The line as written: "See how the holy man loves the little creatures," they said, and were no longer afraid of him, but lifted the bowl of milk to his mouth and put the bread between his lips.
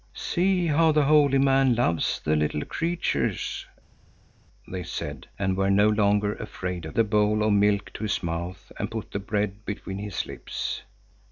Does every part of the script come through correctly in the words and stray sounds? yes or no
no